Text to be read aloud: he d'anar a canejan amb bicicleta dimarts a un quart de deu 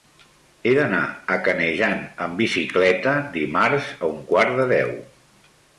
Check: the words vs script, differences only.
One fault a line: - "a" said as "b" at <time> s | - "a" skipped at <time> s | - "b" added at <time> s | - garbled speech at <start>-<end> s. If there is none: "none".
none